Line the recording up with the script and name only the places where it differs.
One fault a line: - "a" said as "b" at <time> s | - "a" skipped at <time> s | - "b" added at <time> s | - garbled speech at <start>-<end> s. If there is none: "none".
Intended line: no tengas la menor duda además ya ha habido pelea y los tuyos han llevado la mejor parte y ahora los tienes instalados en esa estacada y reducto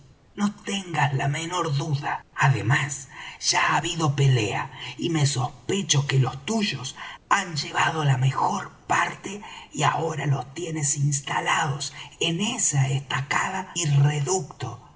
- "me sospecho que" added at 5.1 s